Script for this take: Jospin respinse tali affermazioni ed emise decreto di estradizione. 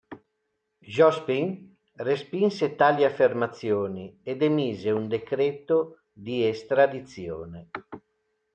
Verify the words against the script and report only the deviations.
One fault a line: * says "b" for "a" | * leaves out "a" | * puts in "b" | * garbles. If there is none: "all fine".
* puts in "un"